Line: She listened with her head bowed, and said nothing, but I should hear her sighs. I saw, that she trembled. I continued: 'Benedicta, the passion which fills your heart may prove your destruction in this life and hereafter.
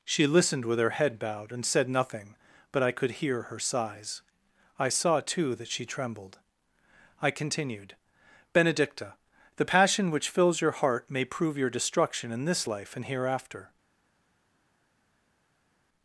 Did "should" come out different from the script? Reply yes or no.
yes